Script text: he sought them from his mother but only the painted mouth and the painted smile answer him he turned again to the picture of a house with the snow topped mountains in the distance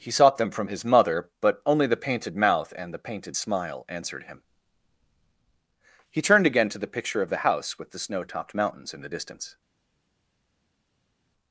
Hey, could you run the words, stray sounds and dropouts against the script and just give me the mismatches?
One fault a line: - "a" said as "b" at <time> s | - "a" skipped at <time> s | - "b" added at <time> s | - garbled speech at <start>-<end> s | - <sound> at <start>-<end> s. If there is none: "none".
- "answer" said as "answered" at 3.9 s
- "a" said as "the" at 7.3 s